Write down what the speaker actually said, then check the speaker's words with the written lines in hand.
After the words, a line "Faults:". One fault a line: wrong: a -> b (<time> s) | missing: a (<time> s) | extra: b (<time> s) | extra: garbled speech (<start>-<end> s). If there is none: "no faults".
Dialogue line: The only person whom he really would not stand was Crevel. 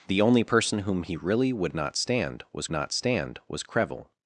The only person whom he really would not stand was not stand was Crevel.
Faults:
extra: not stand was (2.7 s)